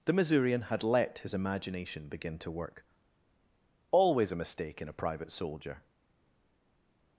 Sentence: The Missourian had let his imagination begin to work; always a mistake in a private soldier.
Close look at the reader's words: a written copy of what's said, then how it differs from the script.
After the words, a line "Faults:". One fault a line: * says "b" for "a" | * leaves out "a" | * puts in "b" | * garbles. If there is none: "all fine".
The Missourian had let his imagination begin to work; always a mistake in a private soldier.
Faults:
all fine